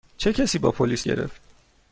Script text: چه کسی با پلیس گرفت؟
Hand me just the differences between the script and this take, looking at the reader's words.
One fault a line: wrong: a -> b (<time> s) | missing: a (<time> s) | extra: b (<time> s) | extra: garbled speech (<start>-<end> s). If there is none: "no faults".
no faults